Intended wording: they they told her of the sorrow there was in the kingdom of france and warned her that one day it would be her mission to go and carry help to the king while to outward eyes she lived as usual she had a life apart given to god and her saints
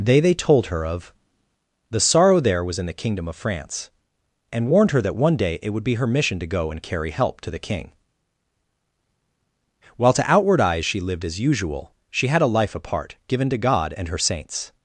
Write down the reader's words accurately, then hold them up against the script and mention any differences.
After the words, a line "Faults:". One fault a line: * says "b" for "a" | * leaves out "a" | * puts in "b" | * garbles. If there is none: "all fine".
they they told her of the sorrow there was in the kingdom of france and warned her that one day it would be her mission to go and carry help to the king while to outward eyes she lived as usual she had a life apart given to god and her saints
Faults:
all fine